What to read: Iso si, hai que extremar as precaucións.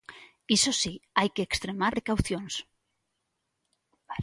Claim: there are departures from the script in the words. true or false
true